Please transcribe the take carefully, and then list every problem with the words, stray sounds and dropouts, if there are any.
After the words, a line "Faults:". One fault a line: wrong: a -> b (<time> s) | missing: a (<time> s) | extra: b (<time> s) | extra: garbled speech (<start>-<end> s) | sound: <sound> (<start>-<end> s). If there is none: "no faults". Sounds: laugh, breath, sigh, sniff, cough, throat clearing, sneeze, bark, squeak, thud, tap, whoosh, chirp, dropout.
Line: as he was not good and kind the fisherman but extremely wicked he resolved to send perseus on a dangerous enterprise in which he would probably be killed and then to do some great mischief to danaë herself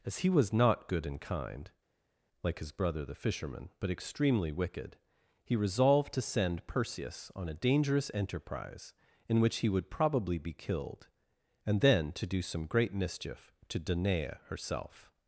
as he was not good and kind like his brother the fisherman but extremely wicked he resolved to send perseus on a dangerous enterprise in which he would probably be killed and then to do some great mischief to danaë herself
Faults:
extra: like his brother (2.4 s)